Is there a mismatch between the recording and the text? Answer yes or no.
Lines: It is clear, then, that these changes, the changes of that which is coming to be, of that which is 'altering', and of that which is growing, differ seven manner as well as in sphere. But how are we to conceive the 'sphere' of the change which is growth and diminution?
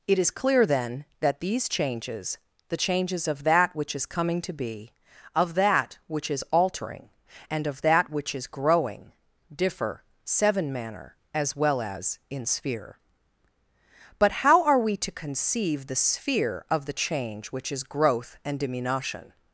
no